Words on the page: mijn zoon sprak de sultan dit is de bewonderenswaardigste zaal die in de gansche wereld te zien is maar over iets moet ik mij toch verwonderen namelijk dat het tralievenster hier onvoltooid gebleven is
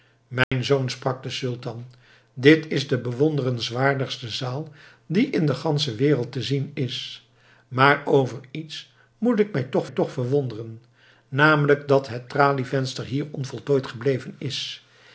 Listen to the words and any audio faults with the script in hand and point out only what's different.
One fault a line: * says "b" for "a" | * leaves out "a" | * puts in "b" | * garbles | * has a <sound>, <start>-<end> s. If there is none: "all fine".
* has a dropout, 0.4-0.5 s
* puts in "toch"